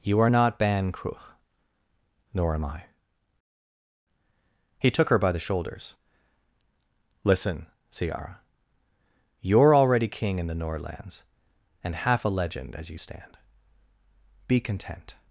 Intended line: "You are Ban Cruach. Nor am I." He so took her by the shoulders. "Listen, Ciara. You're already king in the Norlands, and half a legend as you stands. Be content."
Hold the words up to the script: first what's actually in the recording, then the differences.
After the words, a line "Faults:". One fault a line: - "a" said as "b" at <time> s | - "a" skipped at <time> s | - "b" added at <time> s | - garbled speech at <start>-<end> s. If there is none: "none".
"You are not Ban Cruach. Nor am I." He took her by the shoulders. "Listen, Ciara. You're already king in the Norlands, and half a legend as you stand. Be content."
Faults:
- "not" added at 0.3 s
- "so" skipped at 4.9 s
- "stands" said as "stand" at 12.9 s